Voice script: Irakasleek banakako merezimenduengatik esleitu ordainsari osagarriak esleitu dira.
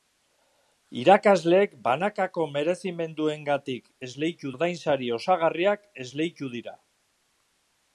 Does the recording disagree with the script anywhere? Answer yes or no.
no